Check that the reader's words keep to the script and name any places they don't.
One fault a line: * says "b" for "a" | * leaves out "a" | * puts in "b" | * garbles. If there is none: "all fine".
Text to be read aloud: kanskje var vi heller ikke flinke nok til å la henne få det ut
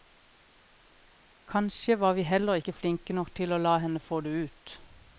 all fine